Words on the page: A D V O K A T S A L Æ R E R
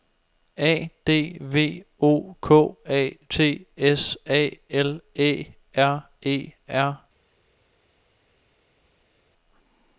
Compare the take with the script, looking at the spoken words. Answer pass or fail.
pass